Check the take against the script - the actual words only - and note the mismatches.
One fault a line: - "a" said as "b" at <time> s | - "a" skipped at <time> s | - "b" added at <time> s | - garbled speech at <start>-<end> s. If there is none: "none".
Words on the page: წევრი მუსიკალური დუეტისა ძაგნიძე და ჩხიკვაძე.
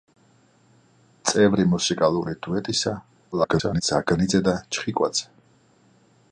- garbled speech at 3.3-3.8 s